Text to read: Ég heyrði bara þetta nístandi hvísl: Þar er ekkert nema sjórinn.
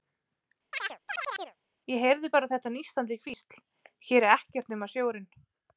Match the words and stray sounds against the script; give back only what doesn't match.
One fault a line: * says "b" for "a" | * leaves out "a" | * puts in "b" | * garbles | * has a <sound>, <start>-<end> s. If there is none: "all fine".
* has a chirp, 0.7-1.6 s
* says "Hér" for "Þar"